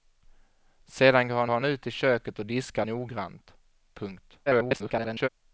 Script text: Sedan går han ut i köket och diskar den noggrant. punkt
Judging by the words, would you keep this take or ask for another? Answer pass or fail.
fail